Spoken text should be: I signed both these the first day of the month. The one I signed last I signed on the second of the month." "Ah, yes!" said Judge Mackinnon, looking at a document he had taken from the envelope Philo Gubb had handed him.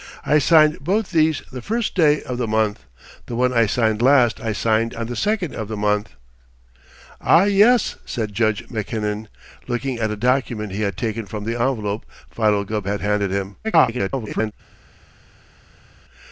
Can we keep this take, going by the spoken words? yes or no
no